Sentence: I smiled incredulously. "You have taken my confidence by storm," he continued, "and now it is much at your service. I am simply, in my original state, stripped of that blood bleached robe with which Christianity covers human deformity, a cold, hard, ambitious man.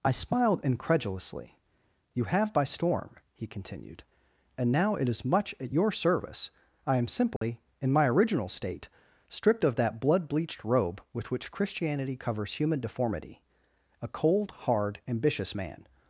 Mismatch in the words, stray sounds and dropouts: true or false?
true